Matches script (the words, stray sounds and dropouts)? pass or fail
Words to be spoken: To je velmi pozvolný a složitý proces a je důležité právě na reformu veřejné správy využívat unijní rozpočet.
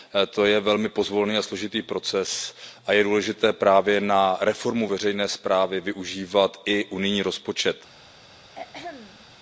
fail